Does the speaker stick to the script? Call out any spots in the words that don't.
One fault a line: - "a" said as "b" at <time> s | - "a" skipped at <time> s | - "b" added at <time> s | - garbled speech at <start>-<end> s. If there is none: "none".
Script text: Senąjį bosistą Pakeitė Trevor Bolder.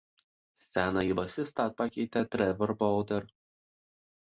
none